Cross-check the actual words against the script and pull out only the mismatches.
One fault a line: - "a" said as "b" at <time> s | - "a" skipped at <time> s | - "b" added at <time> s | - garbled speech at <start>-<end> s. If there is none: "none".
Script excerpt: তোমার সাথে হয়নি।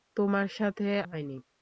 none